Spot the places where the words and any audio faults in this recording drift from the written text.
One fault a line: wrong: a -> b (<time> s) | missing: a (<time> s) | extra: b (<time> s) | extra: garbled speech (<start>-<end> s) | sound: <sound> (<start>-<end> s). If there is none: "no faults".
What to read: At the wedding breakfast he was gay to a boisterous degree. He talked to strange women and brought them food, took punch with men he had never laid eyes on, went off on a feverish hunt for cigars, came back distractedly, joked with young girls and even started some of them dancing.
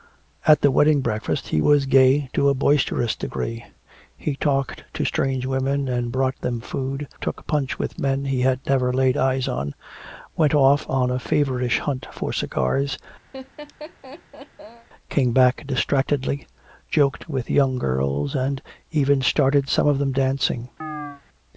sound: laugh (13.3-14.9 s)
sound: chirp (20.8-21.2 s)